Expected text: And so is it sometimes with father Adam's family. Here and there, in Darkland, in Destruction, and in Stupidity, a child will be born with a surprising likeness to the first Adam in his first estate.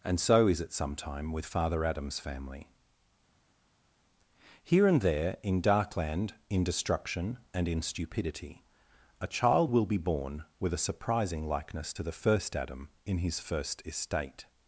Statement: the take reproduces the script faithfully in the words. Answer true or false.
false